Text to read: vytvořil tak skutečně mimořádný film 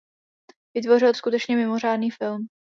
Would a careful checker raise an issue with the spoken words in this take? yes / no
yes